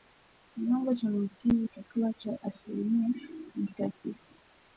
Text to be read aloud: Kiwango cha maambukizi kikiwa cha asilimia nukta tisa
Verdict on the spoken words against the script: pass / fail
pass